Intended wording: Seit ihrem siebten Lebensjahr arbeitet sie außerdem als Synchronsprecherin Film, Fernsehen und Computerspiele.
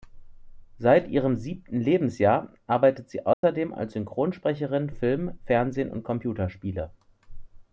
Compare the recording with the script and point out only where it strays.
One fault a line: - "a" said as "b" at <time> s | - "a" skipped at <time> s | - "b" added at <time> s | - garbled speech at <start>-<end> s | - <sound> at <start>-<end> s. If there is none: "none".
- dropout at 3.3-3.4 s